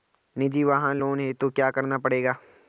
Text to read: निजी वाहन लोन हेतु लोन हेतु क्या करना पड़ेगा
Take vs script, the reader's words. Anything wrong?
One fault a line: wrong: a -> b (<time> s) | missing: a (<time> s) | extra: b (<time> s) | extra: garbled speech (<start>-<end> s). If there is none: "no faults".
missing: लोन हेतु (1.5 s)